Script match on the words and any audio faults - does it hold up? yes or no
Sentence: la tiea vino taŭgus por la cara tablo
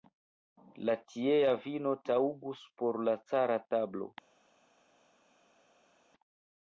yes